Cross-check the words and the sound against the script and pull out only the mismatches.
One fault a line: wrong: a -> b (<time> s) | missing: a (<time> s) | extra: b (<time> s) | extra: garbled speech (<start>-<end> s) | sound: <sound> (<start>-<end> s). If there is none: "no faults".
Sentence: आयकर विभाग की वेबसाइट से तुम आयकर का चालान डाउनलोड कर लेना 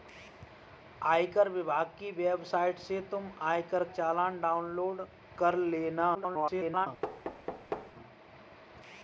missing: का (3.8 s)
extra: garbled speech (6.1-6.9 s)
sound: thud (7.0-7.9 s)